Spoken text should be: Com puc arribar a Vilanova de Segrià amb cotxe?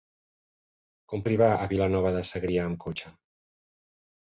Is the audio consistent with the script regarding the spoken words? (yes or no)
no